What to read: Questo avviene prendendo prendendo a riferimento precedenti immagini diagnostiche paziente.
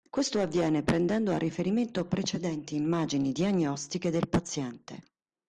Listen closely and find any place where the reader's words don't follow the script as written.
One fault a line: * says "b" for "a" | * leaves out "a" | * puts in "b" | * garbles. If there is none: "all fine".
* leaves out "prendendo"
* puts in "del"